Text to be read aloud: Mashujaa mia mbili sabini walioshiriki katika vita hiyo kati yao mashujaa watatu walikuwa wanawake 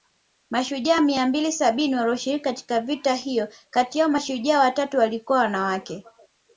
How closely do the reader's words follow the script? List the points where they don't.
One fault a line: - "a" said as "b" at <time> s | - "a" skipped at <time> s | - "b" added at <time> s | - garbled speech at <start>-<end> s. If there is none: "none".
none